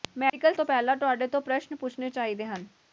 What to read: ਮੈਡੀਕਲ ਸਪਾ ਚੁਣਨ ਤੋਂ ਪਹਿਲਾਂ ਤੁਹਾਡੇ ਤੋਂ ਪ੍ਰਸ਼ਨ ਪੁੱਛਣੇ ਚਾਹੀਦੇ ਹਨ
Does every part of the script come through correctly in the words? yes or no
no